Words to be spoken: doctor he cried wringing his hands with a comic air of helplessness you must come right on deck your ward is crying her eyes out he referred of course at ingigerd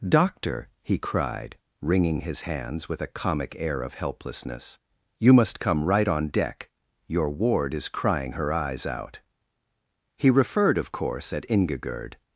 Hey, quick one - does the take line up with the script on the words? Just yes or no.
yes